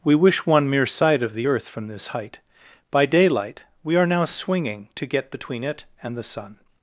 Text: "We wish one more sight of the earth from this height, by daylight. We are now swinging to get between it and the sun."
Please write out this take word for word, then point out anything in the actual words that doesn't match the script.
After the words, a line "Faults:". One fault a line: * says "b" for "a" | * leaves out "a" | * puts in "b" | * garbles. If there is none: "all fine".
"We wish one mere sight of the earth from this height, by daylight. We are now swinging to get between it and the sun."
Faults:
* says "mere" for "more"